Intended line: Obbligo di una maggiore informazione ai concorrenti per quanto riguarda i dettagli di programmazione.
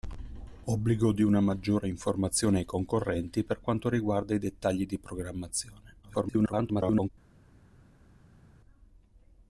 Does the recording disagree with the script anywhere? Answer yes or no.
yes